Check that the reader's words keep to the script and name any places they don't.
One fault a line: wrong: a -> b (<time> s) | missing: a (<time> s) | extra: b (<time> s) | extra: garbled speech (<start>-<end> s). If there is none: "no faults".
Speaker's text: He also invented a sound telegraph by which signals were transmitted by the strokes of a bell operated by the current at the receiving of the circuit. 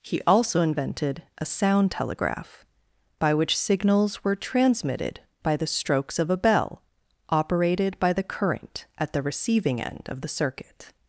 extra: end (9.8 s)